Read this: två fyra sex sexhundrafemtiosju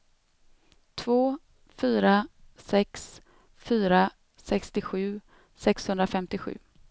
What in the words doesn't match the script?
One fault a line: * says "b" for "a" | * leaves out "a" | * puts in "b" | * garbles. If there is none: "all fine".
* puts in "fyra sextiosju"